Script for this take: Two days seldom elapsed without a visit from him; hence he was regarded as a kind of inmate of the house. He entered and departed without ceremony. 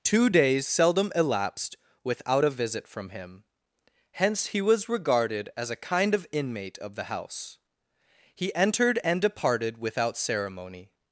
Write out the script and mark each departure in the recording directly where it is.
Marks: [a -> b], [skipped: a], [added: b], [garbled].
Two days seldom elapsed without a visit from him; hence he was regarded as a kind of inmate of the house. He entered and departed without ceremony.